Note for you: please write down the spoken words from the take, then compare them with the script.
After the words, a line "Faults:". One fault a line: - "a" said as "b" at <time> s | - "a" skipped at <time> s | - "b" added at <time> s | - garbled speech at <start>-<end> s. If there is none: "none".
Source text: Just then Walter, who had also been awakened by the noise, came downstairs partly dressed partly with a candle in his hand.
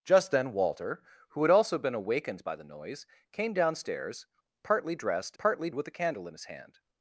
Just then Walter, who had also been awakened by the noise, came downstairs partly dressed partly with a candle in his hand.
Faults:
none